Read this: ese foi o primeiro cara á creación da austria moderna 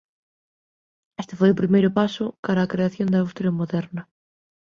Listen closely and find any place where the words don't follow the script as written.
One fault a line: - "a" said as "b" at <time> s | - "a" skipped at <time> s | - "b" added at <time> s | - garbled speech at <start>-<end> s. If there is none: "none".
- "ese" said as "este" at 1.2 s
- "paso" added at 2.0 s